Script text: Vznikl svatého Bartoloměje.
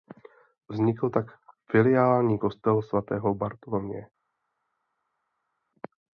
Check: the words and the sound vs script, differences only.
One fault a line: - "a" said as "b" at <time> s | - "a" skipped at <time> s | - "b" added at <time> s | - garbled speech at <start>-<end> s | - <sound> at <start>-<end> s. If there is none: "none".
- "tak filiální kostel" added at 1.1 s